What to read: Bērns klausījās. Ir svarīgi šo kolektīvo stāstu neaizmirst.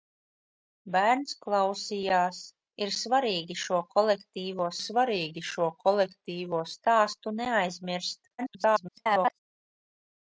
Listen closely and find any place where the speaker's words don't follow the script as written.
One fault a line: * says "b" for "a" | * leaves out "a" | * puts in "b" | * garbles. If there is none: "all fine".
* puts in "svarīgi šo kolektīvo"
* garbles